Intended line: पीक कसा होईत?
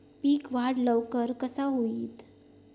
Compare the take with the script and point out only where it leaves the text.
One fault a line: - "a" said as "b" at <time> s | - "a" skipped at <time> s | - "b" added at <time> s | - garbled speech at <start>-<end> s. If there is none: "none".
- "वाढ लवकर" added at 0.5 s